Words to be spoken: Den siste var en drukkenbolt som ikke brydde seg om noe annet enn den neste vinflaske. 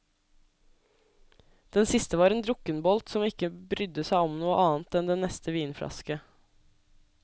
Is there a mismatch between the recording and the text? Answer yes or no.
no